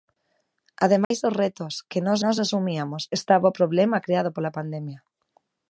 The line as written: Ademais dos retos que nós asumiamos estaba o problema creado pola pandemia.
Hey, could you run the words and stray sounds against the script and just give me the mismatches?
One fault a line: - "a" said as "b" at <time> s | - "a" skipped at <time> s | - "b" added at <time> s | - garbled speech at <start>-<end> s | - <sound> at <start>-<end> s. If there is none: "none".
- dropout at 1.0-1.1 s
- "nós" added at 2.2 s